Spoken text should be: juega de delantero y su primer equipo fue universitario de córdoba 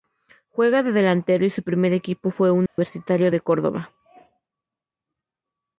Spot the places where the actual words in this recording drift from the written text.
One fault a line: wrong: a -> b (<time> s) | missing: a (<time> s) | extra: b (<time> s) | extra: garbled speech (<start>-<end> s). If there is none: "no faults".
no faults